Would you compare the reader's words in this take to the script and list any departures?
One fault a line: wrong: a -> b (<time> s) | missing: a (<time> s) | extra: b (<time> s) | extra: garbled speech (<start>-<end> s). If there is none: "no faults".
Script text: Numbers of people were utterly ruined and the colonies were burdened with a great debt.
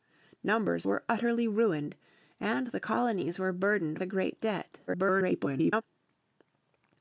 missing: of people (0.9 s)
missing: with (4.0 s)
extra: garbled speech (4.9-5.8 s)